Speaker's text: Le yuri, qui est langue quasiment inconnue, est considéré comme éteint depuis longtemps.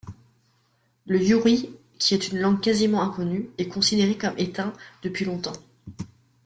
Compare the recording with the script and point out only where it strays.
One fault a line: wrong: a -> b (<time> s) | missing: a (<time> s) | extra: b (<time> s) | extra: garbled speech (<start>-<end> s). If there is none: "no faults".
extra: une (2.3 s)